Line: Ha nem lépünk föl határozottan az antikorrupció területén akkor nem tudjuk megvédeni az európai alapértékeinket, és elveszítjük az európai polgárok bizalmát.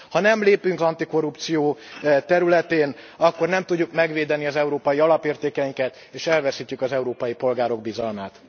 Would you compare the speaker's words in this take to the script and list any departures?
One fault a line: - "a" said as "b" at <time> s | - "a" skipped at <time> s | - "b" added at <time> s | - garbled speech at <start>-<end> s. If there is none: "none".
- "föl határozottan az" skipped at 0.8 s